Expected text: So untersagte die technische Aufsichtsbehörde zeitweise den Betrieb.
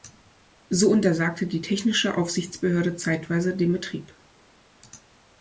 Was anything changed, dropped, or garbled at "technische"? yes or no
no